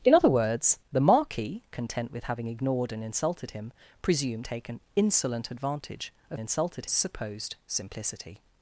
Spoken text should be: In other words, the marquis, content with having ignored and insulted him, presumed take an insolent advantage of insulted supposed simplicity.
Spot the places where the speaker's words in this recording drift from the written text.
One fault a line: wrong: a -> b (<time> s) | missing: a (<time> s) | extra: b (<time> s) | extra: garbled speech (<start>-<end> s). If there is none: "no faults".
no faults